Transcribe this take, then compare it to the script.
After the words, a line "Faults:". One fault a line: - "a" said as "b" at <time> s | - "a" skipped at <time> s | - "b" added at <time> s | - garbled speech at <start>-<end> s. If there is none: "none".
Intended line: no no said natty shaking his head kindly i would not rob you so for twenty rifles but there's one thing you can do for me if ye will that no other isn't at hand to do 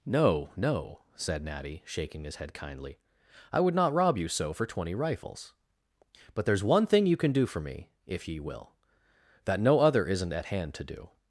no no said natty shaking his head kindly i would not rob you so for twenty rifles but there's one thing you can do for me if ye will that no other isn't at hand to do
Faults:
none